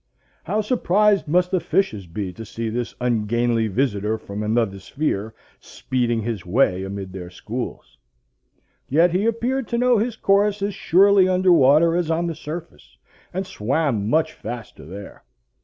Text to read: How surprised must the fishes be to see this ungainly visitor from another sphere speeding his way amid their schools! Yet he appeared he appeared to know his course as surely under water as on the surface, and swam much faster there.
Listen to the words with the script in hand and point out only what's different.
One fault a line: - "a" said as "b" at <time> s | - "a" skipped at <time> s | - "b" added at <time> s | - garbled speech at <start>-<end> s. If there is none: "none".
- "he appeared" skipped at 9.7 s